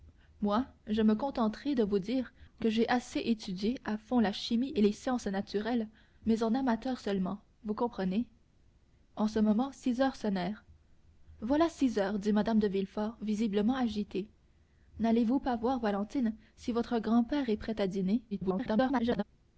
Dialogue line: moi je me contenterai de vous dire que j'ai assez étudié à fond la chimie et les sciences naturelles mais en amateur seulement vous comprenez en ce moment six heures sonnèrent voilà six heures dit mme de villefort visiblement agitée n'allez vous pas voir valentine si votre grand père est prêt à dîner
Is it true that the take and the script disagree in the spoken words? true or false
true